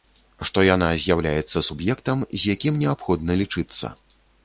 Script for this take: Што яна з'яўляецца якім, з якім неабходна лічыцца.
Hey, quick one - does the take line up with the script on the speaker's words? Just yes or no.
no